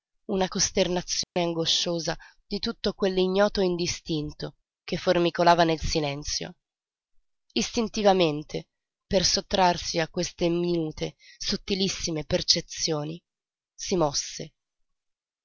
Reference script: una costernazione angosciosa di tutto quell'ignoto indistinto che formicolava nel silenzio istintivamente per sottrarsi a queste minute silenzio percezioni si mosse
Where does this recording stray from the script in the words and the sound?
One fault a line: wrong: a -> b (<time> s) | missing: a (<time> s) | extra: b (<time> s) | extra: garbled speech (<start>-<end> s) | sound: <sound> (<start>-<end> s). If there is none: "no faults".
sound: dropout (1.2-1.4 s)
wrong: silenzio -> sottilissime (11.4 s)